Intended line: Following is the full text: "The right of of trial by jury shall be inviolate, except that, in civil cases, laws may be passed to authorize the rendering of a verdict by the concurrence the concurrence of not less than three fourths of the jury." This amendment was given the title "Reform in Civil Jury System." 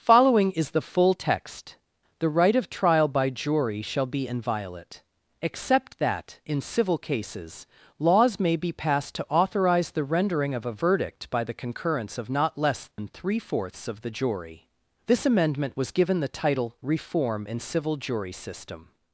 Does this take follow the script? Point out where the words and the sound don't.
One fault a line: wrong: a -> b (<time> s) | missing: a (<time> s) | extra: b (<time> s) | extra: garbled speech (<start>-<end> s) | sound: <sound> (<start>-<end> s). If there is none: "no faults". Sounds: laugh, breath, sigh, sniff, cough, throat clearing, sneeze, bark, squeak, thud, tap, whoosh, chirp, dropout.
missing: of (2.7 s)
missing: the concurrence (12.2 s)
sound: dropout (12.9-13.0 s)